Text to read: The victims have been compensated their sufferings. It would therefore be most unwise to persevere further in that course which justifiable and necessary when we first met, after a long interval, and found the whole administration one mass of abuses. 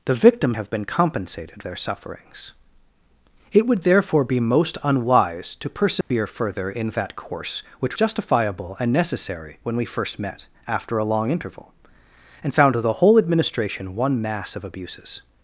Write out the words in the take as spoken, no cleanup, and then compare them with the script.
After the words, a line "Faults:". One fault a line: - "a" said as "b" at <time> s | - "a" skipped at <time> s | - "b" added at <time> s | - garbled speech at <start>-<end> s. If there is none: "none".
The victims have been compensated their sufferings. It would therefore be most unwise to persevere further in that course which justifiable and necessary when we first met, after a long interval, and found the whole administration one mass of abuses.
Faults:
none